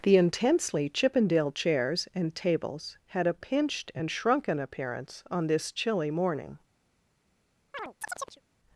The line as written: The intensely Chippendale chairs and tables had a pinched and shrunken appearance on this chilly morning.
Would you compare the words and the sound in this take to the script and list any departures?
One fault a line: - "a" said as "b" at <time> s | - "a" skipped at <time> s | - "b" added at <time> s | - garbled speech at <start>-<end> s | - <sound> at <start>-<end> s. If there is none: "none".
- chirp at 7.7-8.4 s